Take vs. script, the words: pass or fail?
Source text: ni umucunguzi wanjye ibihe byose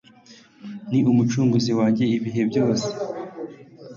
pass